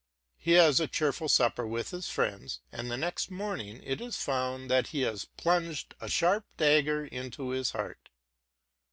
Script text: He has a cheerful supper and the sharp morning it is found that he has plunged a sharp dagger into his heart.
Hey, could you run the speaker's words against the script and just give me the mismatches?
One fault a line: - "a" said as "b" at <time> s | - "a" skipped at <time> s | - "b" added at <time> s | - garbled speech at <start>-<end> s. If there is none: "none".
- "with his friends" added at 1.7 s
- "sharp" said as "next" at 3.0 s